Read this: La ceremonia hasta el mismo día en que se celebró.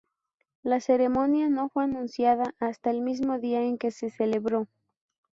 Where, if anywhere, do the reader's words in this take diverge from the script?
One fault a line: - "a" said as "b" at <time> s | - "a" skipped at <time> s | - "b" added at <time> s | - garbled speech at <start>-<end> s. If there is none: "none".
- "no fue anunciada" added at 1.5 s